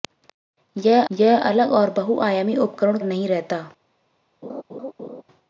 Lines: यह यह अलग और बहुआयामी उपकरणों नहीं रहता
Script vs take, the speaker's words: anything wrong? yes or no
no